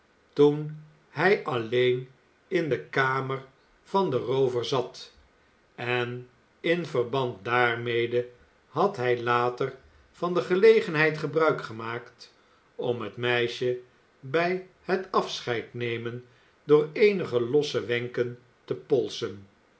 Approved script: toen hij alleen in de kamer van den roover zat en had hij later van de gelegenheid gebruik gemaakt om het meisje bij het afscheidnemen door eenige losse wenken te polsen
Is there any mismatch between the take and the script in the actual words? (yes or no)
yes